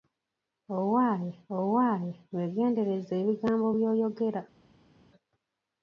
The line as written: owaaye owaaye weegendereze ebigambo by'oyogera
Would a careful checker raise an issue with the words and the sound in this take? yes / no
no